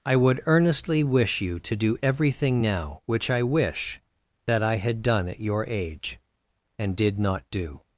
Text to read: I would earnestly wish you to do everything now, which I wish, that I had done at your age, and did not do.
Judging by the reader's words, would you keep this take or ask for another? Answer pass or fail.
pass